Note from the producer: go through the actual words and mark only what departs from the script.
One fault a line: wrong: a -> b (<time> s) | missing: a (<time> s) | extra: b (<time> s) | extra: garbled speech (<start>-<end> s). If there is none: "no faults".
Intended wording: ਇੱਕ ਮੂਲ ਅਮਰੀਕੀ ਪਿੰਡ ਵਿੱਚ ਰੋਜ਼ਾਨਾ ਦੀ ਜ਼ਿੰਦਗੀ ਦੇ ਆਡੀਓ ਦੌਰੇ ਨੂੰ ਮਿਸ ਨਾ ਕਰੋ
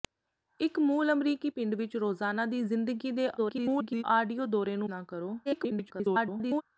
extra: garbled speech (3.4-4.0 s)
missing: ਮਿਸ (4.9 s)
extra: garbled speech (5.4-6.6 s)